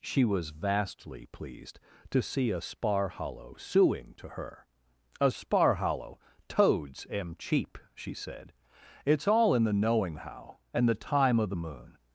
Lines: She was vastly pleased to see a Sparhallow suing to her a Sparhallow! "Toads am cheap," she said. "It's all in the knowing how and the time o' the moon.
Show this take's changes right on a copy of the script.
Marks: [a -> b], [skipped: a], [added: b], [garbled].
She was vastly pleased to see a Sparhallow suing to her a Sparhallow! "Toads am cheap," she said. "It's all in the knowing how and the time o' the moon.